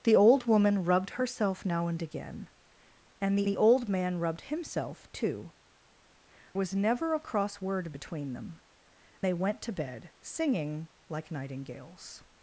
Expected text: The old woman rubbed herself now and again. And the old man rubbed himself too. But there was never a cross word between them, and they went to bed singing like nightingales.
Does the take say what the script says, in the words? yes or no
no